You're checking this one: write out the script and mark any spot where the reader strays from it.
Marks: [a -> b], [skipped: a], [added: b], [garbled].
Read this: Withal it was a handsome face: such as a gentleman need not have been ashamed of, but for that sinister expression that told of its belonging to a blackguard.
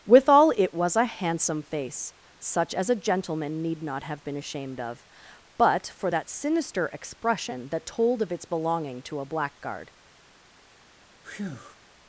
Withal it was a handsome face: such as a gentleman need not have been ashamed of, but for that sinister expression that told of its belonging to a blackguard.